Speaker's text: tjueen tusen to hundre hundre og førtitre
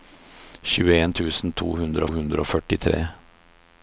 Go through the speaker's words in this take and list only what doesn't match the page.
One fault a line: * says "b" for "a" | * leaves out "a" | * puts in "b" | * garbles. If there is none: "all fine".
all fine